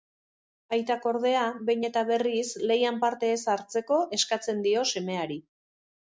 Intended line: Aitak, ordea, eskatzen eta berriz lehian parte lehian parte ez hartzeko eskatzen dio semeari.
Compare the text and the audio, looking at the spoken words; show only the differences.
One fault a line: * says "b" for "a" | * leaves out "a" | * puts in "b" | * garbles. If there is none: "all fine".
* says "behin" for "eskatzen"
* leaves out "lehian parte"